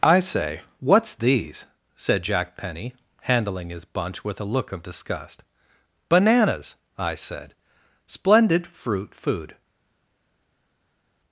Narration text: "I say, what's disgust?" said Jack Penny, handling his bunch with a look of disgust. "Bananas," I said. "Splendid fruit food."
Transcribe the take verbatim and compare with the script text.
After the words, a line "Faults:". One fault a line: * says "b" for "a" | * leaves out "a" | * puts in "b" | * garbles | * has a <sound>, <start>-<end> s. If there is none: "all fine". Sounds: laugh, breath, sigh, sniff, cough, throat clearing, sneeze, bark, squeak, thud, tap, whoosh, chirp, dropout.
"I say, what's these?" said Jack Penny, handling his bunch with a look of disgust. "Bananas," I said. "Splendid fruit food."
Faults:
* says "these" for "disgust"